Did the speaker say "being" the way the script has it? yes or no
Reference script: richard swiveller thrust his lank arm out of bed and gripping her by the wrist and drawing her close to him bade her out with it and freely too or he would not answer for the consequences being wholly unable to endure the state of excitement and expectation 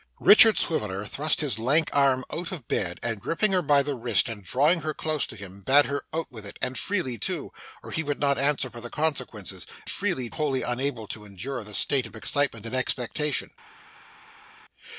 no